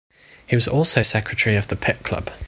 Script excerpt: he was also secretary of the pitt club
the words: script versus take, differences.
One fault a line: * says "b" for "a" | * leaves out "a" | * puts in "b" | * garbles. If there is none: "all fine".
all fine